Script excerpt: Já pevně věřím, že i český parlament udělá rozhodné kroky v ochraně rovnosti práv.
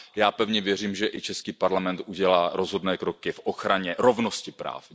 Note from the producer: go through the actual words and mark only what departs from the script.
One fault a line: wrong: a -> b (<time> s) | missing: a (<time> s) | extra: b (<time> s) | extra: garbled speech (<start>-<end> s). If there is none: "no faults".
no faults